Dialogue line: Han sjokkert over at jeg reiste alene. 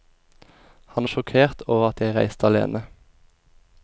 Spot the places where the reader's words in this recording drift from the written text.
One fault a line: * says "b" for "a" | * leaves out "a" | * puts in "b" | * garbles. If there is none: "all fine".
all fine